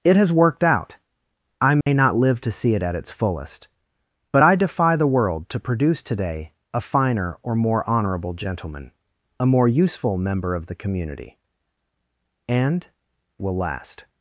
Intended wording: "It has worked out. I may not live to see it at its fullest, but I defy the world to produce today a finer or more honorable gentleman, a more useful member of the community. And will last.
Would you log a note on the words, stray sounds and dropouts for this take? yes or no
yes